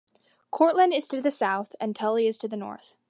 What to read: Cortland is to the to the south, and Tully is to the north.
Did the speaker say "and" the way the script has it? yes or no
yes